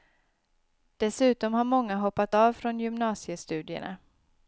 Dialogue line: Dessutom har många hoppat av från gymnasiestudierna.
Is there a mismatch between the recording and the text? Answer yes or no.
no